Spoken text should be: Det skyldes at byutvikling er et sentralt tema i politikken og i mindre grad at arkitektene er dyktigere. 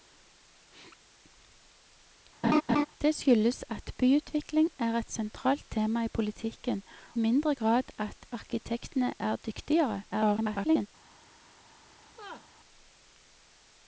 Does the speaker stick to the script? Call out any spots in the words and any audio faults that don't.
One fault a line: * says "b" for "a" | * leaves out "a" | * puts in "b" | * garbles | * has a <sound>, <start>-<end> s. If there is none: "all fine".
* has a laugh, 2.4-2.8 s
* leaves out "og i"
* garbles
* has a laugh, 12.0-12.5 s